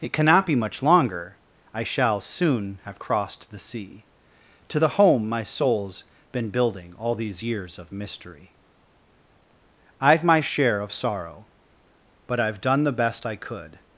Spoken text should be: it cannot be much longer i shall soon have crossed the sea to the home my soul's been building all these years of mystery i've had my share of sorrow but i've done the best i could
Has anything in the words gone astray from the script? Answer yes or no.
yes